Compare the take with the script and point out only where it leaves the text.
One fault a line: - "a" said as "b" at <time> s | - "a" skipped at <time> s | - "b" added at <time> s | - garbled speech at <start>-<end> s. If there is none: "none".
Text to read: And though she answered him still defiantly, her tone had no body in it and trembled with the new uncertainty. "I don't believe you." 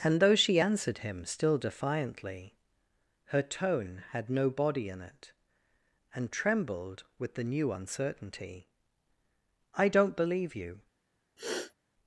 none